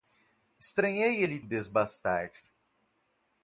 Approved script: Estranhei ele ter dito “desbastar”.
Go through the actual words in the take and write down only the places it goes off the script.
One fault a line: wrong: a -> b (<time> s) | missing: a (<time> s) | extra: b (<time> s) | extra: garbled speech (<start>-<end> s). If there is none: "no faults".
missing: ter dito (1.4 s)